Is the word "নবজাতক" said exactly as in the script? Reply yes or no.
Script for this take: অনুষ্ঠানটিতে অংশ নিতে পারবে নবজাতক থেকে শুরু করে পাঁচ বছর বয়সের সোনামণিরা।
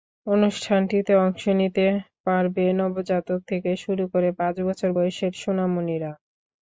yes